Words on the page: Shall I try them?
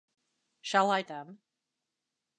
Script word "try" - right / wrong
wrong